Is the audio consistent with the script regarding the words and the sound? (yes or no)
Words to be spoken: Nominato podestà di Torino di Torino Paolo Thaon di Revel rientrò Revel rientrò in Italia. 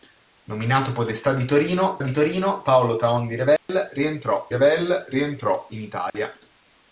no